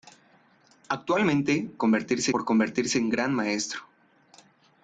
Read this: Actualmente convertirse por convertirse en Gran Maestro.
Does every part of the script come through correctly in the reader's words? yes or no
yes